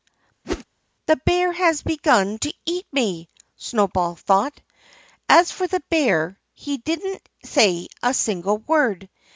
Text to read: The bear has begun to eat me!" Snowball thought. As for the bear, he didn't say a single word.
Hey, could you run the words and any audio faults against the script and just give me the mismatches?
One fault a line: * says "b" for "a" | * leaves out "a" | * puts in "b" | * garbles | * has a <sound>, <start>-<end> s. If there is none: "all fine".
* has a whoosh, 0.4-0.6 s